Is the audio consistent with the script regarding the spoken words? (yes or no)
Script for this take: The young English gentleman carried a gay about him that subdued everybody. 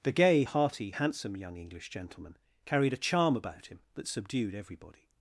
no